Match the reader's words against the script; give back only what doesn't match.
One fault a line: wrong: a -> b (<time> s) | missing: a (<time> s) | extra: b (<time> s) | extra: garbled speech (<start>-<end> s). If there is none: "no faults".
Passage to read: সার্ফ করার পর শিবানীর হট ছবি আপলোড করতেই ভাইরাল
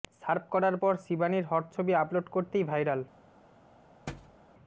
no faults